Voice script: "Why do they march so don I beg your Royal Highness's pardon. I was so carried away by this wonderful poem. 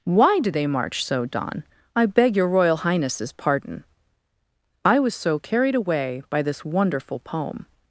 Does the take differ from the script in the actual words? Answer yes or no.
no